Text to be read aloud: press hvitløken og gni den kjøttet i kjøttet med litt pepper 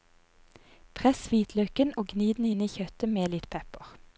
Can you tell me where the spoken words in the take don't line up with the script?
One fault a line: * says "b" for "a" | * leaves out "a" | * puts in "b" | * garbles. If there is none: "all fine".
* says "inn" for "kjøttet"